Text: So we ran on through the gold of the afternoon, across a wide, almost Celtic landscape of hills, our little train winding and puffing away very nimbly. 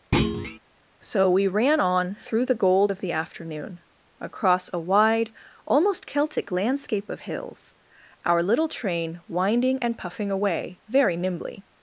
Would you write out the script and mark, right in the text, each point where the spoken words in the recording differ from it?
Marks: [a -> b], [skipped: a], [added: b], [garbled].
So we ran on through the gold of the afternoon, across a wide, almost Celtic landscape of hills, our little train winding and puffing away very nimbly.